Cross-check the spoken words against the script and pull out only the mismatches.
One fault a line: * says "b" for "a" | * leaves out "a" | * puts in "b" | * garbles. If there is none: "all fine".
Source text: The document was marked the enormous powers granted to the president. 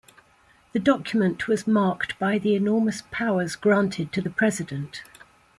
* puts in "by"